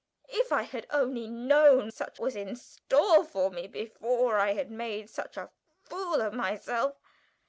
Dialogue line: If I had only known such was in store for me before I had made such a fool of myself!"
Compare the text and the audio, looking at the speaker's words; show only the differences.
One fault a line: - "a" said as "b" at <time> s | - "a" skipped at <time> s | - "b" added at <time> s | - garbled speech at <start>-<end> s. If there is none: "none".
none